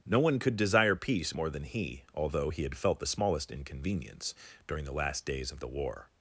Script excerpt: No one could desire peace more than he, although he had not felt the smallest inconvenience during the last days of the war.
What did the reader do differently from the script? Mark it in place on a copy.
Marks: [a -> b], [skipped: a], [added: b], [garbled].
No one could desire peace more than he, although he had [skipped: not] felt the smallest inconvenience during the last days of the war.